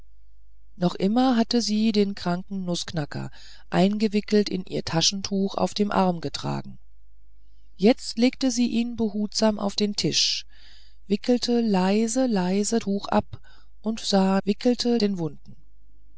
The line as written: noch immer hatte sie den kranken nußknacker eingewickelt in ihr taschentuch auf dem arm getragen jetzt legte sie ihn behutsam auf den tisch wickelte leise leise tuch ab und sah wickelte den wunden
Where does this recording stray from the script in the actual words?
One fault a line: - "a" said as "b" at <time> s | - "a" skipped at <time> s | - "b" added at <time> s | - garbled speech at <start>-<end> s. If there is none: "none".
none